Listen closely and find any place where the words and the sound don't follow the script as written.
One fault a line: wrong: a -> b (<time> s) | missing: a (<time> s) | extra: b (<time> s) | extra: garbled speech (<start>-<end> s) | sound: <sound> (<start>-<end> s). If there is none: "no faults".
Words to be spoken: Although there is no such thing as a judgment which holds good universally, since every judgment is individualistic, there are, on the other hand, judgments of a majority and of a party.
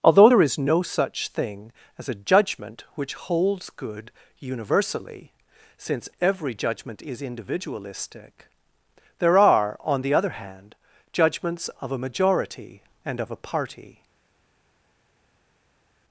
no faults